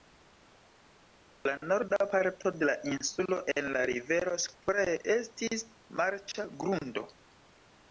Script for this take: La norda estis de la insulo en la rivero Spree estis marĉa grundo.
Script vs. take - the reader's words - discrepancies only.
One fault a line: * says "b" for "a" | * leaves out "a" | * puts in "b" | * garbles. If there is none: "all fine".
* says "parto" for "estis"